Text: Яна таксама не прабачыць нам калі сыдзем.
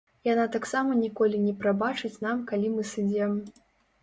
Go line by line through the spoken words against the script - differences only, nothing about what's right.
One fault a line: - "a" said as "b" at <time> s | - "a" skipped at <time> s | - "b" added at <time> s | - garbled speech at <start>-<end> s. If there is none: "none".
- "ніколі" added at 1.0 s
- "мы" added at 2.8 s